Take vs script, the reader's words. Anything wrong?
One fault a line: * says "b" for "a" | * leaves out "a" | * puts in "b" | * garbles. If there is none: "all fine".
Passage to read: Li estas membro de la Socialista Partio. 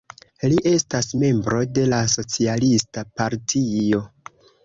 all fine